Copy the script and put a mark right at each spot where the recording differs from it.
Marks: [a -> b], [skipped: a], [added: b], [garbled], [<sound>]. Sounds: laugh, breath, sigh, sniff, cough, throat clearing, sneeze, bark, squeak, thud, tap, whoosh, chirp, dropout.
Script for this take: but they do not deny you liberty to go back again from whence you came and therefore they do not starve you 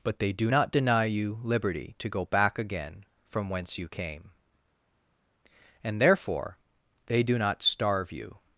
but they do not deny you liberty to go back again from whence you came and therefore they do not starve you